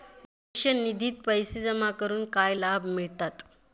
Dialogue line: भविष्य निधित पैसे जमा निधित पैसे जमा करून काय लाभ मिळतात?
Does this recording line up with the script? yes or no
no